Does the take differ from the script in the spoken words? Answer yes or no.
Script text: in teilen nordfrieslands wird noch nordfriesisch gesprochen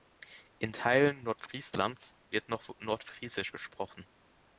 no